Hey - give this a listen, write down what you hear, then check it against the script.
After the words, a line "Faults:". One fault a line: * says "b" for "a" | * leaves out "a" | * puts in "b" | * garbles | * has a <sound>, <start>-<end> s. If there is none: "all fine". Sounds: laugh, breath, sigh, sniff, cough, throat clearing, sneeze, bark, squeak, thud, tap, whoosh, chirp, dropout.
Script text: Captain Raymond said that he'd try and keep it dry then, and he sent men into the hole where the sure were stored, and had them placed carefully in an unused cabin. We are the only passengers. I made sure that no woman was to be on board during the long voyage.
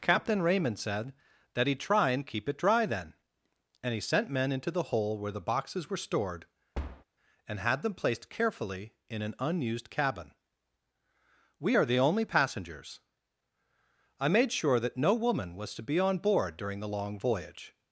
Captain Raymond said that he'd try and keep it dry then, and he sent men into the hole where the boxes were stored, and had them placed carefully in an unused cabin. We are the only passengers. I made sure that no woman was to be on board during the long voyage.
Faults:
* says "boxes" for "sure"
* has a thud, 6.7-7.0 s